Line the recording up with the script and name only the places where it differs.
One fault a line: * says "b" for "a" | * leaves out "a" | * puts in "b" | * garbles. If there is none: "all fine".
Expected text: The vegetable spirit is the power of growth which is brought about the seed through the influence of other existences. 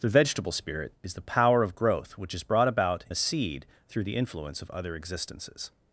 all fine